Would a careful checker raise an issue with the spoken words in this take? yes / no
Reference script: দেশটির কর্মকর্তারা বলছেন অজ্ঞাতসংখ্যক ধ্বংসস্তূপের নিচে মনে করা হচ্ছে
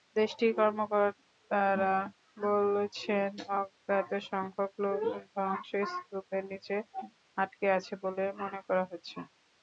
yes